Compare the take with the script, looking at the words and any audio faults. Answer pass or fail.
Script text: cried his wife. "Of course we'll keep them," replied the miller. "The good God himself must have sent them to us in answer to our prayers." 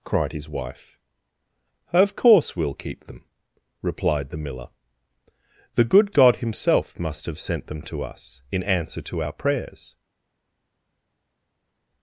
pass